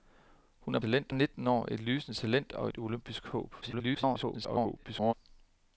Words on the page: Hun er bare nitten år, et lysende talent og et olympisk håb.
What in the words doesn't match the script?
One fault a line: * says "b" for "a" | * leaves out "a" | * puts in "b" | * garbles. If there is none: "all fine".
* says "talent" for "bare"
* garbles